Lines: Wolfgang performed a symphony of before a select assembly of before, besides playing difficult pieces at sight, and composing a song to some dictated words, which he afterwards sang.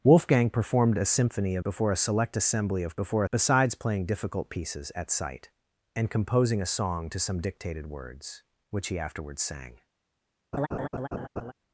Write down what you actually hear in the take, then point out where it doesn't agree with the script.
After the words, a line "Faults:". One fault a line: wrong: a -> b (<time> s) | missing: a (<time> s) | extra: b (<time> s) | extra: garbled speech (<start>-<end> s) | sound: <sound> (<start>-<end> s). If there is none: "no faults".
Wolfgang performed a symphony of before a select assembly of before, besides playing difficult pieces at sight, and composing a song to some dictated words, which he afterwards sang.
Faults:
sound: laugh (10.5-11.5 s)